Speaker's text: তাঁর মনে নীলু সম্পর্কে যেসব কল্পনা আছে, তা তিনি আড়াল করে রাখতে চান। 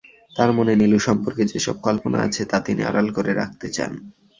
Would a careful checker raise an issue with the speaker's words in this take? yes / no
no